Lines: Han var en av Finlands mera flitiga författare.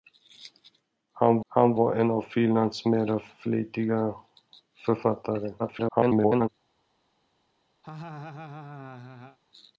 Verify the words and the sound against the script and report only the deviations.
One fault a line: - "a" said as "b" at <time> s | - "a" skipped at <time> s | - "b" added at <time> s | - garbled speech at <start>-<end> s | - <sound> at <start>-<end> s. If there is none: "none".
- "han" added at 1.5 s
- garbled speech at 5.6-6.5 s
- laugh at 7.8-9.4 s